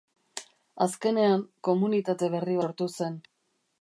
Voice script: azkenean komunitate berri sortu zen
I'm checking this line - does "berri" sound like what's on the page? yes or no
yes